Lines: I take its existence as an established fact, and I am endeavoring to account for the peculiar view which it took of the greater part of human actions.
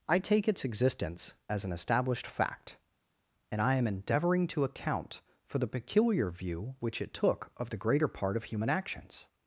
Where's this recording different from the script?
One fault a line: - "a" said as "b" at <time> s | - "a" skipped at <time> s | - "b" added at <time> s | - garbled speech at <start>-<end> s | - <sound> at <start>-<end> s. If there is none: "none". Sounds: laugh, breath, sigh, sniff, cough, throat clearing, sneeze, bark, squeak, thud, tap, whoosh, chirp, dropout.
none